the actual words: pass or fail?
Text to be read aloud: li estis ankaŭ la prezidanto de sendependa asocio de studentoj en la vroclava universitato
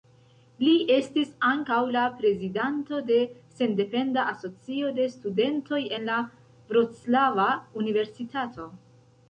pass